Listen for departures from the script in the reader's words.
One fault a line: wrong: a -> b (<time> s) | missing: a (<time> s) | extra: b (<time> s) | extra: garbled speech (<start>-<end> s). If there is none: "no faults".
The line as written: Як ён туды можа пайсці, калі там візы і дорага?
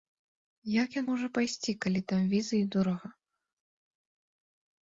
missing: туды (1.1 s)